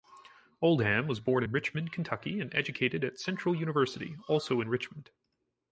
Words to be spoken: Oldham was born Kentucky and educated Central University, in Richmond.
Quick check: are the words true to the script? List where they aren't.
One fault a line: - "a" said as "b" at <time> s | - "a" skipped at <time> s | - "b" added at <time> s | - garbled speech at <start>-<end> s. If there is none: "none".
- "in Richmond" added at 1.4 s
- "at" added at 3.0 s
- "also" added at 4.3 s